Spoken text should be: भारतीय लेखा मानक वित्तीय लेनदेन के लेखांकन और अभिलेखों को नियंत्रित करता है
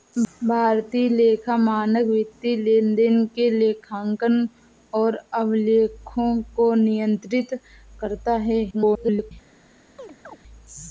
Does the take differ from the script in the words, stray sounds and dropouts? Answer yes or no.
yes